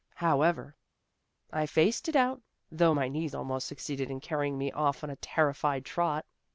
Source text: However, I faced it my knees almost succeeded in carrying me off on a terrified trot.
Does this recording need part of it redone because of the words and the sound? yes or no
yes